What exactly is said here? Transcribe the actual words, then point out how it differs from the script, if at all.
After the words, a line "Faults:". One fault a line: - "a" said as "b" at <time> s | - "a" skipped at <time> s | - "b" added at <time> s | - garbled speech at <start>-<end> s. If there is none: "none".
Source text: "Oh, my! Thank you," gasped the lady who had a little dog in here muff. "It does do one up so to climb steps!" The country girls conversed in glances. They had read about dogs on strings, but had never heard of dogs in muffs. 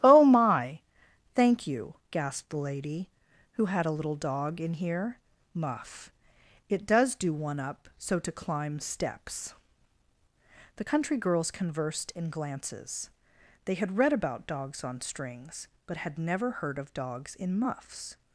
"Oh, my! Thank you," gasped the lady who had a little dog in here muff. "It does do one up so to climb steps!" The country girls conversed in glances. They had read about dogs on strings, but had never heard of dogs in muffs.
Faults:
none